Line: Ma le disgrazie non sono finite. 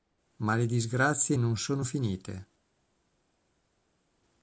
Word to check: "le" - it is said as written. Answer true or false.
true